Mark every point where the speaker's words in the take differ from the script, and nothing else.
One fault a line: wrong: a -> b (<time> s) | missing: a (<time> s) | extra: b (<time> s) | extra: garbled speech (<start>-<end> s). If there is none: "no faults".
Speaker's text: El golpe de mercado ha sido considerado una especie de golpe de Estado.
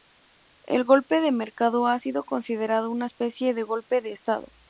no faults